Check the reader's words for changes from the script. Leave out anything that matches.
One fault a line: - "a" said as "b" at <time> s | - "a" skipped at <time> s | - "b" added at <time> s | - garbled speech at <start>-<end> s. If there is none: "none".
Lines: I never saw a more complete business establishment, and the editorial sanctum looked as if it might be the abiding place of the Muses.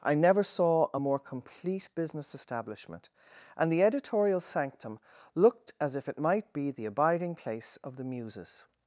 none